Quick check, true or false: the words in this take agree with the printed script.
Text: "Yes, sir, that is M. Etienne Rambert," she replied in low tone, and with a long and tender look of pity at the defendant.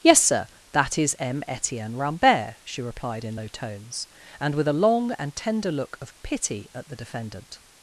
false